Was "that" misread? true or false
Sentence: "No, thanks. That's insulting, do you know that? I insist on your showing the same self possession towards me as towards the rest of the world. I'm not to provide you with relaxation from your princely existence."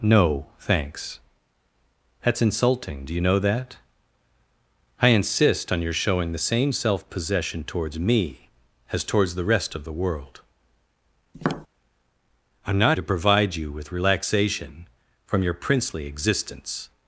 false